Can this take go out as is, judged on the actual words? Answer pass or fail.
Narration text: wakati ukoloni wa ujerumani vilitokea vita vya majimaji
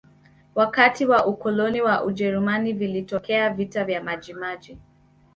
fail